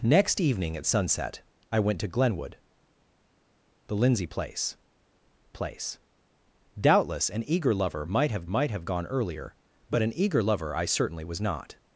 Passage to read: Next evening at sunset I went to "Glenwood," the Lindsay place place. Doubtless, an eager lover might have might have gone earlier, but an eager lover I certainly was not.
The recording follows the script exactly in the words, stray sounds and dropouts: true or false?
true